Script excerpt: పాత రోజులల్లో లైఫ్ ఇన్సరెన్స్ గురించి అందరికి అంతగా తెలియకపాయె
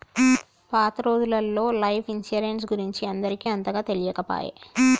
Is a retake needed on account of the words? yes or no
no